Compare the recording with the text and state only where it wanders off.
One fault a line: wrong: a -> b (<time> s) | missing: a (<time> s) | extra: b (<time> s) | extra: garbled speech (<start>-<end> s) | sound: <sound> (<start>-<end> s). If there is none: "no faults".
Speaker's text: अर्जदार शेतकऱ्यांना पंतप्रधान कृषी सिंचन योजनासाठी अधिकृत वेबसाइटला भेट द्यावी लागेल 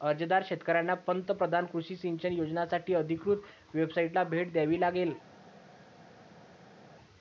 no faults